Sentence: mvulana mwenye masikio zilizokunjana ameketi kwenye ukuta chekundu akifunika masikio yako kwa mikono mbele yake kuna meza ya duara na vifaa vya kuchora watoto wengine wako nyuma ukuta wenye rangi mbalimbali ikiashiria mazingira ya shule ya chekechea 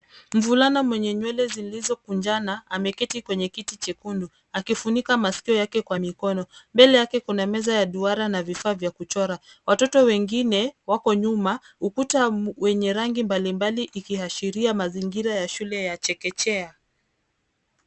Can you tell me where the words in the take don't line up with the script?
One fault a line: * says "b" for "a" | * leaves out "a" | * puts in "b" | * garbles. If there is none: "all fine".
* says "nywele" for "masikio"
* says "kiti" for "ukuta"
* says "yake" for "yako"